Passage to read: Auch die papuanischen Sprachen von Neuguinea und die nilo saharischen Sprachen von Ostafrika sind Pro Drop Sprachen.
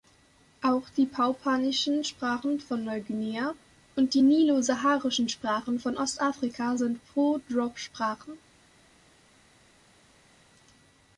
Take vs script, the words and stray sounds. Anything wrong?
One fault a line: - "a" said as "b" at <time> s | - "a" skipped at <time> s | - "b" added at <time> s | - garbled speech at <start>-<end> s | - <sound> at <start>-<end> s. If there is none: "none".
none